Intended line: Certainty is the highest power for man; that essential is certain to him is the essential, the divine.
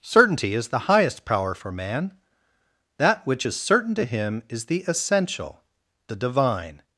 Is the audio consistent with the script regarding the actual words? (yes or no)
no